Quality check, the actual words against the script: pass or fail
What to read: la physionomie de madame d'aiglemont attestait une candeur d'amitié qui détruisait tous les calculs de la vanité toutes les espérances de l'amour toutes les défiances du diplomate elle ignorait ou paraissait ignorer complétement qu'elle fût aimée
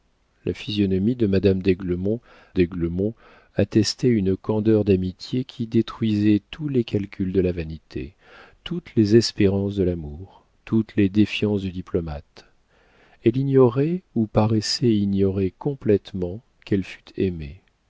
fail